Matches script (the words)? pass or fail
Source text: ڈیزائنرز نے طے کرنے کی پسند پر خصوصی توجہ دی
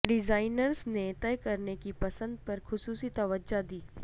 pass